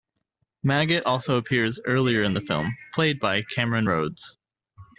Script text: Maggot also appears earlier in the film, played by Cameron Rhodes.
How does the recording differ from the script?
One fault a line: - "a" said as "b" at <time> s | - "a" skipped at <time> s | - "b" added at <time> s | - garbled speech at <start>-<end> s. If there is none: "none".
none